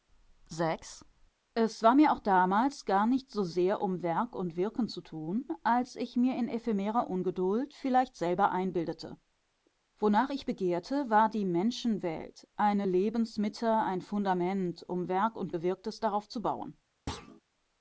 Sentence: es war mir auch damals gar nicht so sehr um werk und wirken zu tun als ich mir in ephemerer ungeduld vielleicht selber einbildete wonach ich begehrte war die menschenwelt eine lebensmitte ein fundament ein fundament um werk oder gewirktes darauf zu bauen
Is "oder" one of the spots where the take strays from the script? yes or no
yes